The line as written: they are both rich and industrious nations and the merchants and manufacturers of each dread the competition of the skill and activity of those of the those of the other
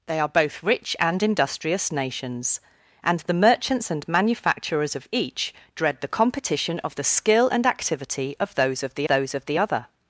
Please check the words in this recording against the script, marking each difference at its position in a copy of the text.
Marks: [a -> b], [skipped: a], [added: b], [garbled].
they are both rich and industrious nations and the merchants and manufacturers of each dread the competition of the skill and activity of those of the those of the other